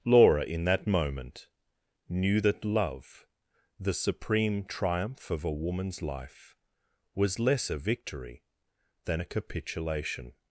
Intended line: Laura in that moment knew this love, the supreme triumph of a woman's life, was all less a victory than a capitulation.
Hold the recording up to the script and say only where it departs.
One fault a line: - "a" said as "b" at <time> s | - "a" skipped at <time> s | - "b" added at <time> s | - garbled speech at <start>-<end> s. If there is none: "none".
- "this" said as "that" at 2.4 s
- "all" skipped at 7.4 s